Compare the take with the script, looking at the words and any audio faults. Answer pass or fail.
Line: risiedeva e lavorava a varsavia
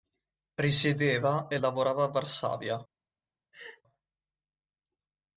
fail